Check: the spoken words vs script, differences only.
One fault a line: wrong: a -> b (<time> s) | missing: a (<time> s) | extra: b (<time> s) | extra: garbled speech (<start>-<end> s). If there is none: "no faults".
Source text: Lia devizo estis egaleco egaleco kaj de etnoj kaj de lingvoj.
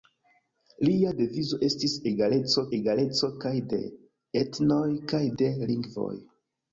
no faults